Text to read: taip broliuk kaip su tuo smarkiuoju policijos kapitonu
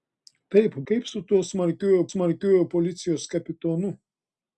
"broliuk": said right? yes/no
no